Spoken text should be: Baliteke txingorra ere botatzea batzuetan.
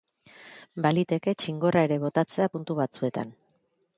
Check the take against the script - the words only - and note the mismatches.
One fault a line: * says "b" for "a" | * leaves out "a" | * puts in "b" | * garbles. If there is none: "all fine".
* puts in "puntu"